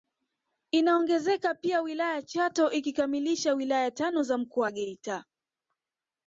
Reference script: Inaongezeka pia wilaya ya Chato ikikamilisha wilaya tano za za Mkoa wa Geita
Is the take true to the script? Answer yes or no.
no